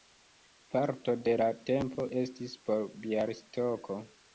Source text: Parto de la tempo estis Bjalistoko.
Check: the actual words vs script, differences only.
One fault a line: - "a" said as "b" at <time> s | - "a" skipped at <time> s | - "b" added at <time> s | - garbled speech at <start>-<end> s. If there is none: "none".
- "por" added at 2.7 s